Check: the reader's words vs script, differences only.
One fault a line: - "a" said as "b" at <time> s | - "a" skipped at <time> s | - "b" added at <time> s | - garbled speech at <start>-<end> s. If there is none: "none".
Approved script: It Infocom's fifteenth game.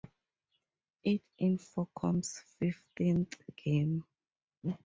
none